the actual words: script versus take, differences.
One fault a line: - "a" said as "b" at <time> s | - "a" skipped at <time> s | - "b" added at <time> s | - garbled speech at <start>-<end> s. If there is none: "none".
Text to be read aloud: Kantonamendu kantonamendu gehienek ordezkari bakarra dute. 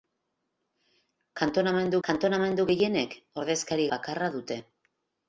none